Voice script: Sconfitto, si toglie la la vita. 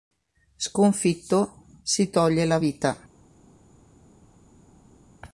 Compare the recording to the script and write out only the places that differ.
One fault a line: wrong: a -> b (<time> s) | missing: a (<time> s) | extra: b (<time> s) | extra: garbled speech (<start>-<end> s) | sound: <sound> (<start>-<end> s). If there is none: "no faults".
missing: la (2.6 s)